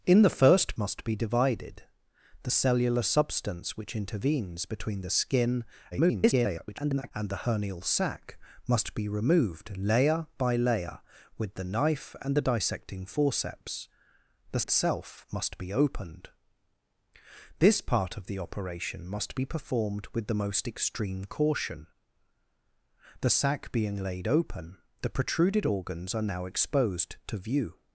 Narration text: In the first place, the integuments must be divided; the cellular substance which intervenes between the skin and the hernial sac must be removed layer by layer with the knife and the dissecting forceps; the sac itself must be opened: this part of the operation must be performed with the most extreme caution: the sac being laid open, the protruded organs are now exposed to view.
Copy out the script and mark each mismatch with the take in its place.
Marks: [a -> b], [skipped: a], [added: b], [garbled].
In the first [skipped: place, the integuments] must be divided; the cellular substance which intervenes between the skin [garbled] and the hernial sac must be removed layer by layer with the knife and the dissecting forceps; the [skipped: sac] itself must be opened: this part of the operation must be performed with the most extreme caution: the sac being laid open, the protruded organs are now exposed to view.